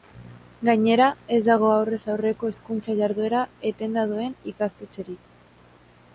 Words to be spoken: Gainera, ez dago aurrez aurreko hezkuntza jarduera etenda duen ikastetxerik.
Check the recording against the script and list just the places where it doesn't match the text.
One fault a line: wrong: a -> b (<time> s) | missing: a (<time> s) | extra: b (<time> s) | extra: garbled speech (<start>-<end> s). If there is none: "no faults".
no faults